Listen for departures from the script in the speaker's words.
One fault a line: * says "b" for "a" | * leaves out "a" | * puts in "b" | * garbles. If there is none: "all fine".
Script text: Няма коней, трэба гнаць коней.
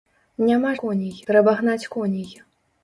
all fine